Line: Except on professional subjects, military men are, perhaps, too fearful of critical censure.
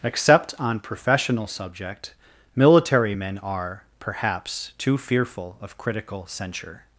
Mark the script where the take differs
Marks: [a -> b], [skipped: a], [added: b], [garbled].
Except on professional [subjects, -> subject] military men are, perhaps, too fearful of critical censure.